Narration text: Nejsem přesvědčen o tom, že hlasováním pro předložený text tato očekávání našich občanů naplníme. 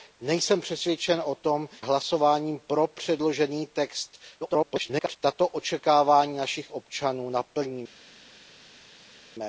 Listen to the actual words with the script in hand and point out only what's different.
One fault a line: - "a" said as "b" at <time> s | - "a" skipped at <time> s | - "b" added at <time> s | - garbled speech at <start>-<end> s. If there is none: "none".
- "že" skipped at 1.7 s
- garbled speech at 4.4-5.2 s